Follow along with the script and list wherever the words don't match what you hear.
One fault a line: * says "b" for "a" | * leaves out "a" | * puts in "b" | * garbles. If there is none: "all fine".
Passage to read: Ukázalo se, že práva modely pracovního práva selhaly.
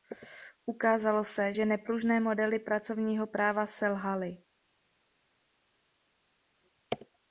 * says "nepružné" for "práva"